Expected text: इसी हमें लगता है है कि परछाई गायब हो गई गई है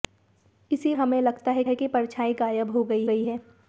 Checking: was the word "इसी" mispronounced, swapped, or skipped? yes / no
no